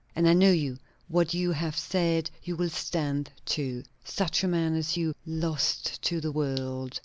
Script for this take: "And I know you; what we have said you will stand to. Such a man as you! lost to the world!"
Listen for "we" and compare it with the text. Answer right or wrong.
wrong